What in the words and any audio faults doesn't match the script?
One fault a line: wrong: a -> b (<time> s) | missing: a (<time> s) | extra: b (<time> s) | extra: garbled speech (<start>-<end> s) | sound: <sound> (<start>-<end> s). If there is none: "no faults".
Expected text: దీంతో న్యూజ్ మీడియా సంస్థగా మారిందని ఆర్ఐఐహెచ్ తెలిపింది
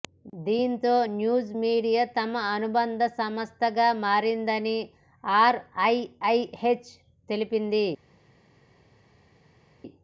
extra: తమ అనుబంధ (2.2 s)